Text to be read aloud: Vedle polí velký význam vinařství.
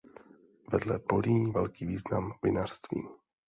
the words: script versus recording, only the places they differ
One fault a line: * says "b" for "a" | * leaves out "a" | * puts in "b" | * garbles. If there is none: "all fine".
all fine